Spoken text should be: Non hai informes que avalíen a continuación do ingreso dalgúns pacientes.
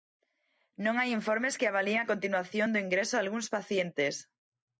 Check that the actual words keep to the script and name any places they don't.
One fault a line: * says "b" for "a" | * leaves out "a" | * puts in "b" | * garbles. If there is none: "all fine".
all fine